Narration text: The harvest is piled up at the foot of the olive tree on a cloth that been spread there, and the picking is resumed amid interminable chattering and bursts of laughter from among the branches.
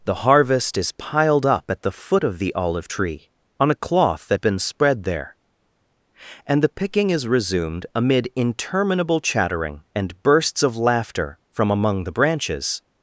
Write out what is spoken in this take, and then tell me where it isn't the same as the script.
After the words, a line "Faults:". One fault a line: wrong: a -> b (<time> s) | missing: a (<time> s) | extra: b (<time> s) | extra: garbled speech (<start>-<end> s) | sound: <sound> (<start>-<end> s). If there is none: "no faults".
The harvest is piled up at the foot of the olive tree on a cloth that been spread there, and the picking is resumed amid interminable chattering and bursts of laughter from among the branches.
Faults:
no faults